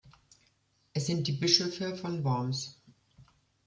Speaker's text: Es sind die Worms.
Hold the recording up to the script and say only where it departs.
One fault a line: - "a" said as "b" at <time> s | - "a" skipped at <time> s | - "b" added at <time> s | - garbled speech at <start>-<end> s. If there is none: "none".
- "Bischöfe von" added at 1.3 s